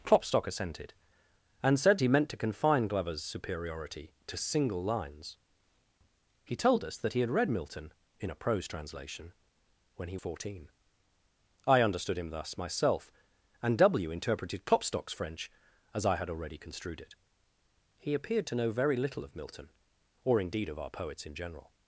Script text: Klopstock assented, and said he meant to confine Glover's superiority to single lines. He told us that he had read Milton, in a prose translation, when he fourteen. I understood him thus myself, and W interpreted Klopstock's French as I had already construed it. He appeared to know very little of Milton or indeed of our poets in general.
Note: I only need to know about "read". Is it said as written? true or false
true